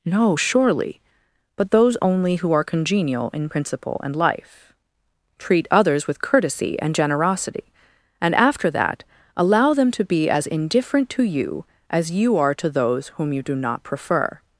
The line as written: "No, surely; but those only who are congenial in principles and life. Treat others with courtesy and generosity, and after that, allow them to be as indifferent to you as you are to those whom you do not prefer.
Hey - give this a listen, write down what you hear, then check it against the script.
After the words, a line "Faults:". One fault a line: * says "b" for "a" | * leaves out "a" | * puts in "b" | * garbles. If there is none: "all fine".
"No, surely; but those only who are congenial in principle and life. Treat others with courtesy and generosity, and after that, allow them to be as indifferent to you as you are to those whom you do not prefer.
Faults:
* says "principle" for "principles"